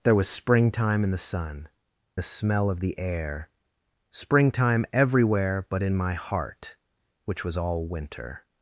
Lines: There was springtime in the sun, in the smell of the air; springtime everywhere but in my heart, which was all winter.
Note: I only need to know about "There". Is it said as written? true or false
true